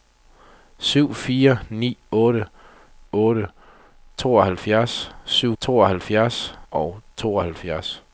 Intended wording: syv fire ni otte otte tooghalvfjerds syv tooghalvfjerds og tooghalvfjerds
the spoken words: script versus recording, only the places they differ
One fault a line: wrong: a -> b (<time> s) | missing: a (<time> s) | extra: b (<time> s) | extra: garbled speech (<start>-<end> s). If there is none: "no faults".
no faults